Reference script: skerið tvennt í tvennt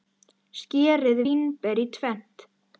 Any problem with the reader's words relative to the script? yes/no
yes